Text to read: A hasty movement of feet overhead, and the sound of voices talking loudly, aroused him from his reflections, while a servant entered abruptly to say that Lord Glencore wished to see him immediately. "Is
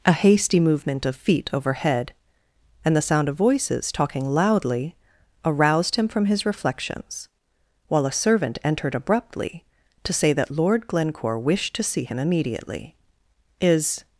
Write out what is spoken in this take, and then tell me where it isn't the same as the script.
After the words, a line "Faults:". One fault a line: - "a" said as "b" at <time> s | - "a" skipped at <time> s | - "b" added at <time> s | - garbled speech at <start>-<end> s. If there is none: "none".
A hasty movement of feet overhead, and the sound of voices talking loudly, aroused him from his reflections, while a servant entered abruptly to say that Lord Glencore wished to see him immediately. "Is
Faults:
none